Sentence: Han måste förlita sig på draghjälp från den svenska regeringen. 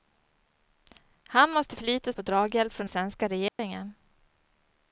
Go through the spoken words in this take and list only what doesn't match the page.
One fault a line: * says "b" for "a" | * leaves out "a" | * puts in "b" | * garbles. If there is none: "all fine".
* leaves out "sig"
* leaves out "den"